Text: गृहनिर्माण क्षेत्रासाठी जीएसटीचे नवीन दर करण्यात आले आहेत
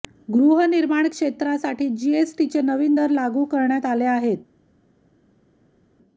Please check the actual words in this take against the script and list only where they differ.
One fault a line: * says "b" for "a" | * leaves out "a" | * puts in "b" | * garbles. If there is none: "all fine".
* puts in "लागू"